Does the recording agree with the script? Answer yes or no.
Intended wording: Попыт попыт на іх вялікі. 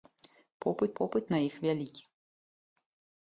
yes